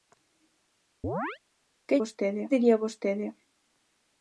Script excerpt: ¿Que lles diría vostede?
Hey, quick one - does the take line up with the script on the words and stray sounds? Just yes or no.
no